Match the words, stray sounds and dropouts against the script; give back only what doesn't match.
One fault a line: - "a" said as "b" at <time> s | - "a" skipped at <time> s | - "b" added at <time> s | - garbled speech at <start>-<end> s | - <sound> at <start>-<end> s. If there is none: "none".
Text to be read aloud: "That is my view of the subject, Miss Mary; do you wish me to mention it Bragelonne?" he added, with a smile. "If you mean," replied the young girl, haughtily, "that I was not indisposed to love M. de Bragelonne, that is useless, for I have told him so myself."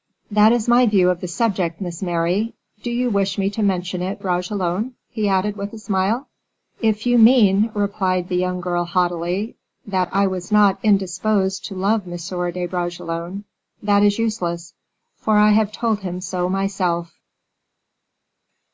none